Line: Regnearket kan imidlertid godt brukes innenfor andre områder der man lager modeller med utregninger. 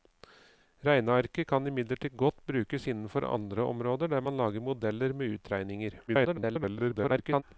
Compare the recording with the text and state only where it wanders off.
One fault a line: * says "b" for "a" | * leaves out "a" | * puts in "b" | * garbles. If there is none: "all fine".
* garbles